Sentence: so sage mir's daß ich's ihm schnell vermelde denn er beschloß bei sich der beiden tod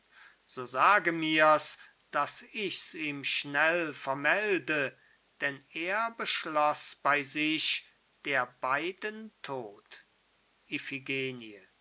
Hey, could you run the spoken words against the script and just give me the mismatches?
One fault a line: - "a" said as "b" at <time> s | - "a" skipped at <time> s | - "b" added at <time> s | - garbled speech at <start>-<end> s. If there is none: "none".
none